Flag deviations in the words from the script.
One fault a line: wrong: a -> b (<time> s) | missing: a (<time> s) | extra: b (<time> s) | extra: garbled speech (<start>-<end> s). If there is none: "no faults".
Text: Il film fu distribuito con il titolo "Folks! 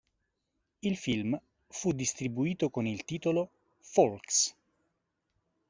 no faults